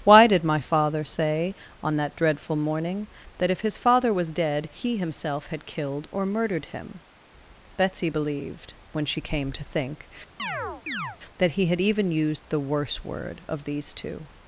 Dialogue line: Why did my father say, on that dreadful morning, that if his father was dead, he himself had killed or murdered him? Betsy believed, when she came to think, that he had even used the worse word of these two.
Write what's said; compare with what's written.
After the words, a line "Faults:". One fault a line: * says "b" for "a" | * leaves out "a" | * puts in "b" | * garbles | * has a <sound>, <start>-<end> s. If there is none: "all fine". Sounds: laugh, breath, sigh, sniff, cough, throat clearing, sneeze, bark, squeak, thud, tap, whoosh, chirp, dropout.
Why did my father say, on that dreadful morning, that if his father was dead, he himself had killed or murdered him? Betsy believed, when she came to think, that he had even used the worse word of these two.
Faults:
* has a chirp, 10.4-11.2 s